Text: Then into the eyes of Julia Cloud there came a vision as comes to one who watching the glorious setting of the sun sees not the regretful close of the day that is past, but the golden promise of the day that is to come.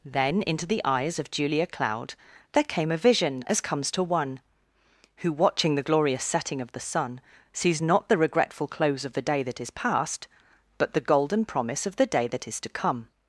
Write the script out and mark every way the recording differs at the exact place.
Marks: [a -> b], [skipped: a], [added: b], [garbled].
Then into the eyes of Julia Cloud there came a vision as comes to one who watching the glorious setting of the sun sees not the regretful close of the day that is past, but the golden promise of the day that is to come.